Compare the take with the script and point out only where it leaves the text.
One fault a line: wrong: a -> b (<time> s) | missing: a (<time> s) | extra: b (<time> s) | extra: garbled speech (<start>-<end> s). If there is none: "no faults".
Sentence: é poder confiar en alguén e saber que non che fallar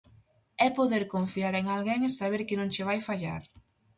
extra: vai (2.9 s)